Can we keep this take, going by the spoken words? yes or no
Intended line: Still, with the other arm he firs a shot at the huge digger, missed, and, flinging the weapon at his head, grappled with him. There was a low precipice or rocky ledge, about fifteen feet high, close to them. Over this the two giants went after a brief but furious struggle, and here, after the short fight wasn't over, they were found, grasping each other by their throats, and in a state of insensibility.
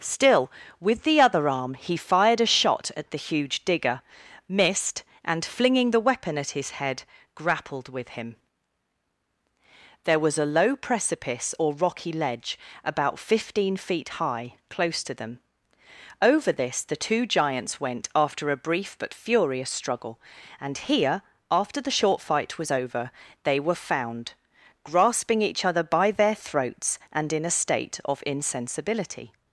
no